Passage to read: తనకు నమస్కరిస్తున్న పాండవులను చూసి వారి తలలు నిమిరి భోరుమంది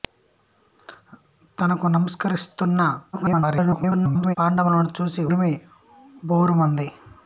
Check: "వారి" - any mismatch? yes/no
yes